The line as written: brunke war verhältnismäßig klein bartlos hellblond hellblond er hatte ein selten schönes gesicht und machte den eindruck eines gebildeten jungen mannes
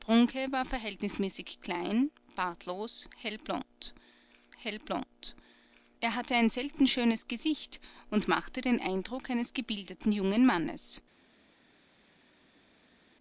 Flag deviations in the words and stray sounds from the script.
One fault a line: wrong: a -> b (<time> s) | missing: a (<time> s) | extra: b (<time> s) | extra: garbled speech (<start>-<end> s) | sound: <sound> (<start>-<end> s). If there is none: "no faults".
no faults